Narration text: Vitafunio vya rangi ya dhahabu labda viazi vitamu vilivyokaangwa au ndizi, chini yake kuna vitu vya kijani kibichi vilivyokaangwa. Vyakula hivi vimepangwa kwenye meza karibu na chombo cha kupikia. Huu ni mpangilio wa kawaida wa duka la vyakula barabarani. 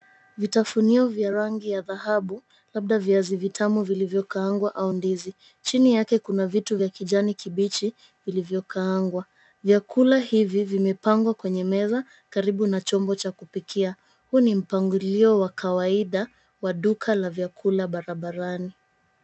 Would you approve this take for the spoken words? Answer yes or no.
yes